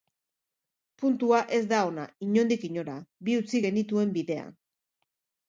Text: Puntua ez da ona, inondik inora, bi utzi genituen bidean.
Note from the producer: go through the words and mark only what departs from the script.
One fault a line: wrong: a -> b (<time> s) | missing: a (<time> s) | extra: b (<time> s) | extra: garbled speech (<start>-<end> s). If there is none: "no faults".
no faults